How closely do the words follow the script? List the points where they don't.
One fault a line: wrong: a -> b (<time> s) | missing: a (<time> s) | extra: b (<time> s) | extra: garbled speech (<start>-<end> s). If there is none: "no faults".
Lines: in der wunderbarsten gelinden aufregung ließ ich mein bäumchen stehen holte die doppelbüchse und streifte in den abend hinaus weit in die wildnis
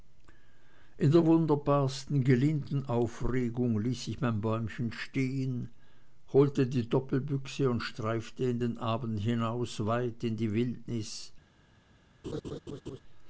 no faults